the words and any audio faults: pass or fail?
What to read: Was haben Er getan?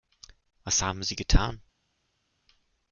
fail